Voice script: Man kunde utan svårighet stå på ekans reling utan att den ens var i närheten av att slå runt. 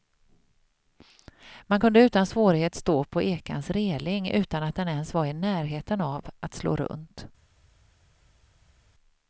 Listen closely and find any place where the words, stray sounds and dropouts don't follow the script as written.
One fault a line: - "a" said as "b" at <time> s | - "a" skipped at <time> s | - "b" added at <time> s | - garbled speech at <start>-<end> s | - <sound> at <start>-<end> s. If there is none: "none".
none